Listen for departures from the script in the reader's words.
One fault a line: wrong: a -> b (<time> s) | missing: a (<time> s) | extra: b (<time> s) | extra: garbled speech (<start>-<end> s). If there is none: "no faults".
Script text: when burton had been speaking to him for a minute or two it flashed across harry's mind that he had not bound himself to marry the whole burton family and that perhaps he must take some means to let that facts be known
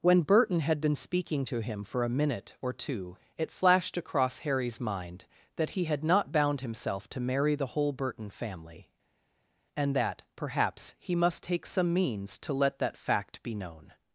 wrong: facts -> fact (13.0 s)